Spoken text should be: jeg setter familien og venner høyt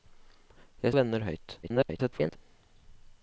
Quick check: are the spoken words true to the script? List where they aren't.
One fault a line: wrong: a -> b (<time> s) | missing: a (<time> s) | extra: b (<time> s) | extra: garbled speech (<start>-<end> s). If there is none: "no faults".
missing: setter familien og (0.9 s)
extra: garbled speech (1.6-2.4 s)